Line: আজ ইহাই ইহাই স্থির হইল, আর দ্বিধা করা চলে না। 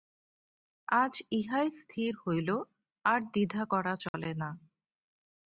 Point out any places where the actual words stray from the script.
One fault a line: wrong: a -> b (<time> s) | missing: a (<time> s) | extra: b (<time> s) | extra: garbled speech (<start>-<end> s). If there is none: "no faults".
missing: ইহাই (1.7 s)